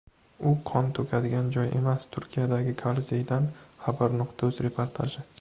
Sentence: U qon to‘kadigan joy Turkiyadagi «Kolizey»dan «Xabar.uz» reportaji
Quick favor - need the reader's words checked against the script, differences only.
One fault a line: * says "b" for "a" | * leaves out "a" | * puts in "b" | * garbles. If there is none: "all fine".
* puts in "emas"